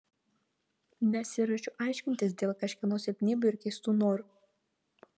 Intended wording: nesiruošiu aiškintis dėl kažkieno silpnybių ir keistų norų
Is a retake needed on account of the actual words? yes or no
no